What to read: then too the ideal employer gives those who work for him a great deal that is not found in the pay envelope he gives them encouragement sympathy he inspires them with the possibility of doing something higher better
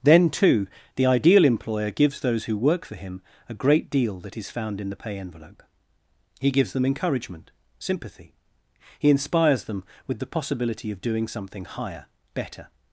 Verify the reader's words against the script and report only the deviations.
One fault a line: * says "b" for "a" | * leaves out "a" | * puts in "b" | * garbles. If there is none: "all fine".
* leaves out "not"